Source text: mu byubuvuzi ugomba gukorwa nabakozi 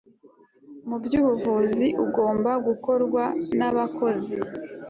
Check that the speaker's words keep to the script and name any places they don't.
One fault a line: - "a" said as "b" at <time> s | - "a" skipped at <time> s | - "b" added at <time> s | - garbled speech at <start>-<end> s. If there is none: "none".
none